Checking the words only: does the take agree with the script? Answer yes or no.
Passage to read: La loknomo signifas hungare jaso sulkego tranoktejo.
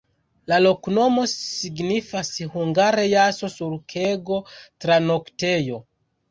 yes